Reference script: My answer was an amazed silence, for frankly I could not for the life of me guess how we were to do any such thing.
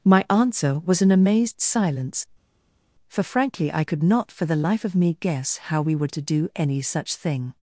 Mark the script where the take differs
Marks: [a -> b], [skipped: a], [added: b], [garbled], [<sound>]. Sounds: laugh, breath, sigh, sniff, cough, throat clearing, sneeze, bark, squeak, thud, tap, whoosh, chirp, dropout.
My answer was an amazed silence, for frankly I could not for the life of me guess how we were to do any such thing.